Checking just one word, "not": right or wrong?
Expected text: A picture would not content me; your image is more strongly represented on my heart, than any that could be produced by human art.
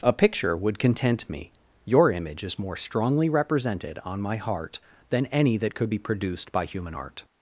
wrong